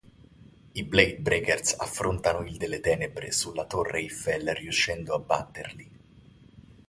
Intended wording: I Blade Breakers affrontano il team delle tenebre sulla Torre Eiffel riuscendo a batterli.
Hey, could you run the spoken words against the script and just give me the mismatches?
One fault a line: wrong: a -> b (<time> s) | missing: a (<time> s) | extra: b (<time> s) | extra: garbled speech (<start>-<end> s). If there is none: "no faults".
missing: team (2.6 s)